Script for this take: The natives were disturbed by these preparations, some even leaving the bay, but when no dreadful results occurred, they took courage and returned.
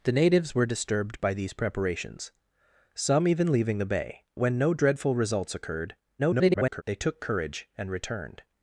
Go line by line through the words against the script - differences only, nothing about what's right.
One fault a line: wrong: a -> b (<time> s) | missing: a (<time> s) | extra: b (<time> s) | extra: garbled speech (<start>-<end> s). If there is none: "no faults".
missing: but (4.2 s)
extra: garbled speech (6.2-6.8 s)